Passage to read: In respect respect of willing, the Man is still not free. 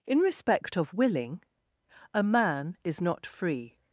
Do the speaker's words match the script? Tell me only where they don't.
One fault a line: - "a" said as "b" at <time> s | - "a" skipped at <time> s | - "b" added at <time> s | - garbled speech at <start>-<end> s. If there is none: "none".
- "respect" skipped at 0.8 s
- "the" said as "a" at 2.1 s
- "still" skipped at 3.0 s